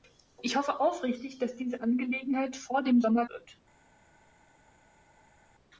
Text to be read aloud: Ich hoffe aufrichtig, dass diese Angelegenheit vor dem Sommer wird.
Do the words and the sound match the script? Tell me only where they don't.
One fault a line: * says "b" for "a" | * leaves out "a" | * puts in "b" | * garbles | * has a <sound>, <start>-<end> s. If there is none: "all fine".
all fine